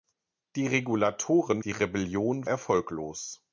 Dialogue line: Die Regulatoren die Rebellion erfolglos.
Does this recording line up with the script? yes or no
yes